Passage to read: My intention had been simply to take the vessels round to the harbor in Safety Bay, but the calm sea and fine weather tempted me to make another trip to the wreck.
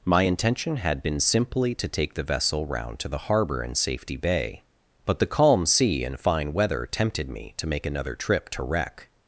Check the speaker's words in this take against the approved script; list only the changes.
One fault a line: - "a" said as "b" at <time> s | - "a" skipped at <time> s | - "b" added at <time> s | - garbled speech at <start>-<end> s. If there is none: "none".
- "vessels" said as "vessel" at 2.2 s
- "the" skipped at 8.6 s